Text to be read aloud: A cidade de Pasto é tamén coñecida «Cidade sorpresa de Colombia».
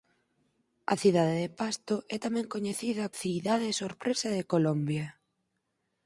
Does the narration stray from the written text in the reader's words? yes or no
no